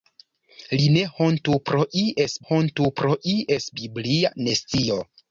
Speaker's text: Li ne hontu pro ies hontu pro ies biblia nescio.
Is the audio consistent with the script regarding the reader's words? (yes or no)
yes